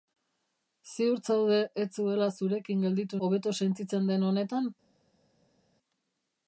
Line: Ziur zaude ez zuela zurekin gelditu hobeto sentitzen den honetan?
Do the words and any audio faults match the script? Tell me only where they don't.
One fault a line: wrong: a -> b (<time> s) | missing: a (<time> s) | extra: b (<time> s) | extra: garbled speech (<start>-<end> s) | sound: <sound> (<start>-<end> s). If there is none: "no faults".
no faults